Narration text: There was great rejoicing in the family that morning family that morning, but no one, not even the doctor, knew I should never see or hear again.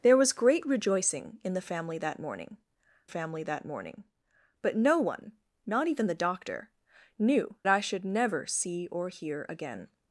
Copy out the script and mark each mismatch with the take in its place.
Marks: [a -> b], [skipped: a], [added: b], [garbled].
There was great rejoicing in the family that morning family that morning, but no one, not even the doctor, knew I should never see or hear again.